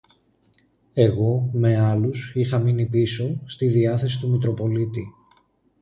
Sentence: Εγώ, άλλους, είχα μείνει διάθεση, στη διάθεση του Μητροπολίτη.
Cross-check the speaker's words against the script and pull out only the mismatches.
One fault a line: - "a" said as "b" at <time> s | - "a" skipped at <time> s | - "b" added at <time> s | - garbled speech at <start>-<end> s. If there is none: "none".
- "με" added at 1.5 s
- "διάθεση" said as "πίσω" at 2.8 s